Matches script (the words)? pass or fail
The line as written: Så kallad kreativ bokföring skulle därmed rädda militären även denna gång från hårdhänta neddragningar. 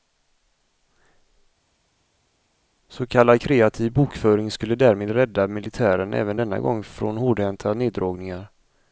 pass